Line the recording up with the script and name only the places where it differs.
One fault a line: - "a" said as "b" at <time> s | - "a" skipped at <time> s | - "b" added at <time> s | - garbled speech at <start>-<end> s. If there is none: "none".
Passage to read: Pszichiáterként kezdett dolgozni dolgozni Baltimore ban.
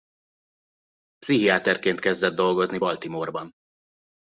- "dolgozni" skipped at 2.8 s